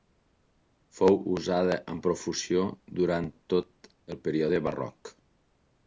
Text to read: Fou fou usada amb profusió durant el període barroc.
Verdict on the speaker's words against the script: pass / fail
fail